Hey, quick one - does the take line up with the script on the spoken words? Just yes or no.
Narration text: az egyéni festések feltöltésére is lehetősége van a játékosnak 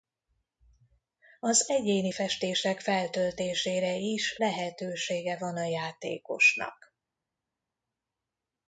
yes